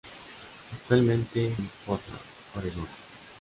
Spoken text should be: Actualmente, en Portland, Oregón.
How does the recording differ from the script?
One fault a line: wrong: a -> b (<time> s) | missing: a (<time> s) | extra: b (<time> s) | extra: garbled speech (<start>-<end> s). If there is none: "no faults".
no faults